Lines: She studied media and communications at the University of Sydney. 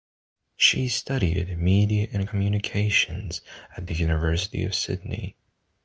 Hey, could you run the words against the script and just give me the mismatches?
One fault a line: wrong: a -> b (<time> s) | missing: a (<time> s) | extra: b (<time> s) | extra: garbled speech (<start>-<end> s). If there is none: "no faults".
no faults